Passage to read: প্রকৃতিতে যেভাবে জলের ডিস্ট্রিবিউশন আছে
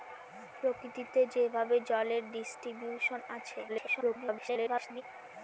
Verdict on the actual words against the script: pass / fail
fail